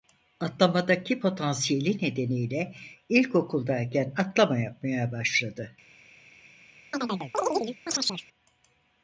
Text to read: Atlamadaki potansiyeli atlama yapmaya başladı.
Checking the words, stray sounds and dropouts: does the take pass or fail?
fail